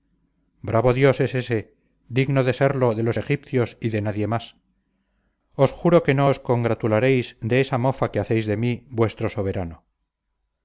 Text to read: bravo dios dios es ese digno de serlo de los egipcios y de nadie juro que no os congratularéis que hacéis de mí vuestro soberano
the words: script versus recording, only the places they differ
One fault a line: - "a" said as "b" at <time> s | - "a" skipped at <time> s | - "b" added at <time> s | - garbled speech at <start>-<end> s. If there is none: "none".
- "dios" skipped at 1.2 s
- "más os" added at 4.3 s
- "de esa mofa" added at 7.4 s